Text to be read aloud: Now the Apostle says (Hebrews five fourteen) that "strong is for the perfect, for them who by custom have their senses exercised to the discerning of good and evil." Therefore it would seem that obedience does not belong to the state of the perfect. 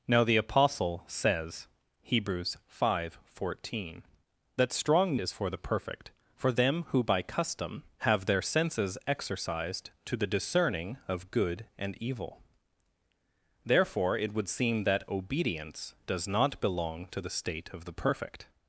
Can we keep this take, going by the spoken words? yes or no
yes